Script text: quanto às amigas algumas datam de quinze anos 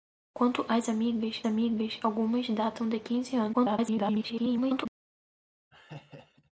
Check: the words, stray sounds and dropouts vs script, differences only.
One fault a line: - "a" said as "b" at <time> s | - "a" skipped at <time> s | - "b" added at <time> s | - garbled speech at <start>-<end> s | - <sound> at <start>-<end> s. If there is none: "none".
- "amigas" added at 1.5 s
- garbled speech at 3.5-4.9 s
- laugh at 5.7-6.5 s